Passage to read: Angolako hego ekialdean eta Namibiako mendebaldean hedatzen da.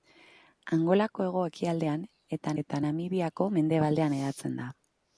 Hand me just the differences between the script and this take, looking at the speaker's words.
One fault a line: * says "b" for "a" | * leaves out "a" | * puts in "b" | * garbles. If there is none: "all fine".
* puts in "eta"